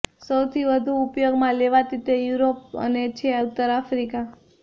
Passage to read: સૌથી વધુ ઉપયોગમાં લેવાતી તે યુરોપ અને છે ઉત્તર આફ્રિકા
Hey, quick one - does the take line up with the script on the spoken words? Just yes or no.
yes